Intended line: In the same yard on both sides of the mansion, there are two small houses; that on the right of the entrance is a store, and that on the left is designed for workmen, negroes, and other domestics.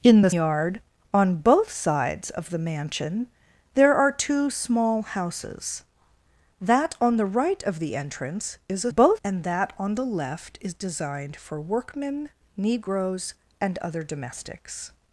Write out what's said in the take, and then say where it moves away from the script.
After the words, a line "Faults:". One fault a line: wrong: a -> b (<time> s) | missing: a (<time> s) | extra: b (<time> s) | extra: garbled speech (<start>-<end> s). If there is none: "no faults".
In the yard on both sides of the mansion, there are two small houses; that on the right of the entrance is a both, and that on the left is designed for workmen, negroes, and other domestics.
Faults:
missing: same (0.3 s)
wrong: store -> both (8.9 s)